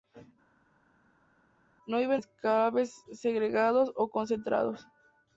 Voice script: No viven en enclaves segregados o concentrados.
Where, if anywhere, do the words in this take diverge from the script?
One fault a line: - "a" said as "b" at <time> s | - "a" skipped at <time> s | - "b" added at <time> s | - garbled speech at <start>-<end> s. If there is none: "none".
- "en" skipped at 2.2 s